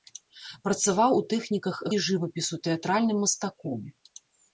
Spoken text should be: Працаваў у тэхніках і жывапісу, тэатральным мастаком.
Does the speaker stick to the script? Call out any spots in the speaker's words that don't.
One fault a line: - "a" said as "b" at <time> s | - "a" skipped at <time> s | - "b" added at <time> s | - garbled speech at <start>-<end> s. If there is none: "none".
none